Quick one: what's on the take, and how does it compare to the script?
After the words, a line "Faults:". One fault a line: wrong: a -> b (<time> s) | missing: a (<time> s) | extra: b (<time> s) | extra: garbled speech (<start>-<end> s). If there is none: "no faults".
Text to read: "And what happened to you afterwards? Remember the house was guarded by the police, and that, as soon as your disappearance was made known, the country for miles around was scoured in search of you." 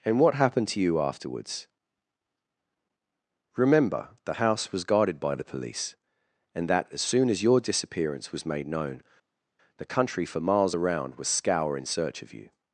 "And what happened to you afterwards? Remember the house was guarded by the police, and that, as soon as your disappearance was made known, the country for miles around was scour in search of you."
Faults:
wrong: scoured -> scour (11.3 s)